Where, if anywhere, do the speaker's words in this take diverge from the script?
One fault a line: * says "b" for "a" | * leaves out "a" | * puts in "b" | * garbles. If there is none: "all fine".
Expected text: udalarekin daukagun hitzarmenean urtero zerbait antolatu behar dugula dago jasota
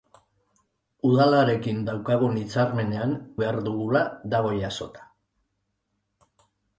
* leaves out "urtero zerbait antolatu"